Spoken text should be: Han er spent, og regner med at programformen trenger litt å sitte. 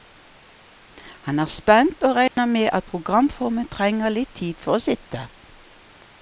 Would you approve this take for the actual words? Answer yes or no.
no